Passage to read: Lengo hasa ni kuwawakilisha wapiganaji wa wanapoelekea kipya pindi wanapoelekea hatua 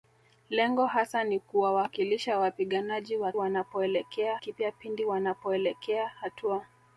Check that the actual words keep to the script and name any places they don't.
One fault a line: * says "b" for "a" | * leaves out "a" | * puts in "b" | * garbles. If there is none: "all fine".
all fine